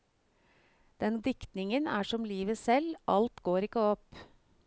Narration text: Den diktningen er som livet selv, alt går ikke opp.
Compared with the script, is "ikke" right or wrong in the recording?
right